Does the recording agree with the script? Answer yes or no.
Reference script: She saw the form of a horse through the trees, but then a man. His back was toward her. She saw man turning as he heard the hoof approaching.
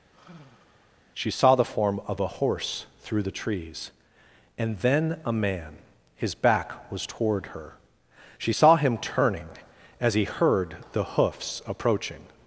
no